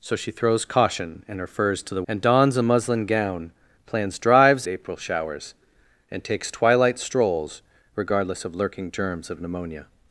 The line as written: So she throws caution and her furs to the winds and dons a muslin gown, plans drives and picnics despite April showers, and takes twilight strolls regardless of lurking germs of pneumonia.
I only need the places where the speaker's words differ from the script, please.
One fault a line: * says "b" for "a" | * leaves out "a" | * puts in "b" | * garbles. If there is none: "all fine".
* leaves out "winds"
* leaves out "and picnics despite"